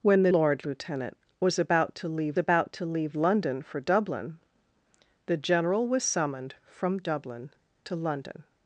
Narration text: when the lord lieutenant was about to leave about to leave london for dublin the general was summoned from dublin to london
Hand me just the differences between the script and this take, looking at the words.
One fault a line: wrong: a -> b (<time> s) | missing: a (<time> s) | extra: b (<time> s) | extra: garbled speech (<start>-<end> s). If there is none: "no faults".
no faults